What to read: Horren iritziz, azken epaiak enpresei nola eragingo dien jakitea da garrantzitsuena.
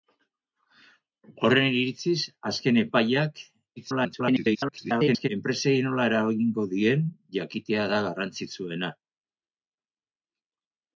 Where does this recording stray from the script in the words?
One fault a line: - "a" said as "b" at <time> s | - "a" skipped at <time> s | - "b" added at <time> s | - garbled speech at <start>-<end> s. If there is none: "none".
- garbled speech at 3.8-5.3 s